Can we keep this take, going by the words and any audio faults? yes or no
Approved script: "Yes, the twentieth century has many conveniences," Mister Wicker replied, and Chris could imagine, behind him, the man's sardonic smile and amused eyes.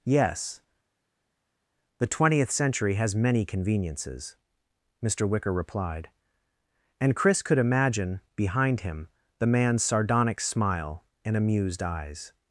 yes